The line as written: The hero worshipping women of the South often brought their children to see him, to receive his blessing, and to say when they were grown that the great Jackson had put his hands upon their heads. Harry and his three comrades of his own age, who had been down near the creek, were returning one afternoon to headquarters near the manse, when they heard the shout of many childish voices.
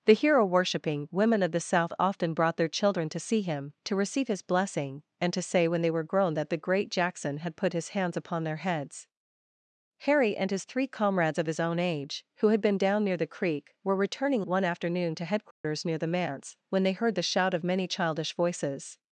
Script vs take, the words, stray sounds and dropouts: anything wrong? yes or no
yes